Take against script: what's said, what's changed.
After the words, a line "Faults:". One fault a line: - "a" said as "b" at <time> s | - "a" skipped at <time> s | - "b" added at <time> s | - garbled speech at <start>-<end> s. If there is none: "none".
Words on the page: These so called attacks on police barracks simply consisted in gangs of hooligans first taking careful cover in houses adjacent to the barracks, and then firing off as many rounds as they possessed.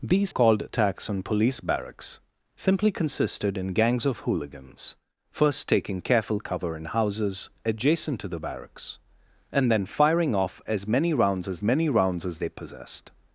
These called attacks on police barracks simply consisted in gangs of hooligans first taking careful cover in houses adjacent to the barracks, and then firing off as many rounds as many rounds as they possessed.
Faults:
- "so" skipped at 0.3 s
- "many rounds as" added at 11.6 s